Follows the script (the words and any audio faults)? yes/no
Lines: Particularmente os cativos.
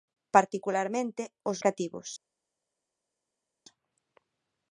yes